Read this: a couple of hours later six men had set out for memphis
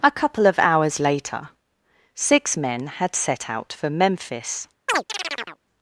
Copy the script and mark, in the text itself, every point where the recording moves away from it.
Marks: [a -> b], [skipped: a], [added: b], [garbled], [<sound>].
a couple of hours later six men had set out for memphis [chirp]